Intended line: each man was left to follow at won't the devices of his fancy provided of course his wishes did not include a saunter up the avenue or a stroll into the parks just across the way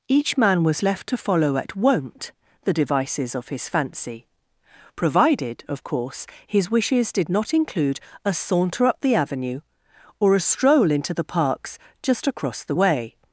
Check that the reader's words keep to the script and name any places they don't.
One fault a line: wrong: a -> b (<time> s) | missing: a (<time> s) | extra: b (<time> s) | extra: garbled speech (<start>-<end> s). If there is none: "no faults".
no faults